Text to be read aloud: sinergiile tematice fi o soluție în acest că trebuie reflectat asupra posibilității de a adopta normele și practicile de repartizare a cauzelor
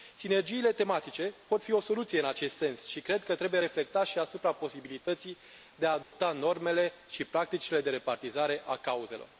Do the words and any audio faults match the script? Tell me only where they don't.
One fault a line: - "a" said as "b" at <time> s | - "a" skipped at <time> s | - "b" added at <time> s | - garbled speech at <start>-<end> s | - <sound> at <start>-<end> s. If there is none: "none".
- "pot" added at 1.5 s
- "sens și cred" added at 2.5 s
- "și" added at 4.1 s
- dropout at 6.0-6.1 s